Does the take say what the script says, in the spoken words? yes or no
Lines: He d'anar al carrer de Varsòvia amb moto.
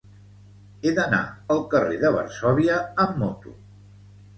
yes